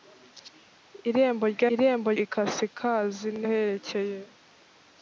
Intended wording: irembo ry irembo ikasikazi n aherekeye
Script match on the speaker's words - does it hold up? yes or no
yes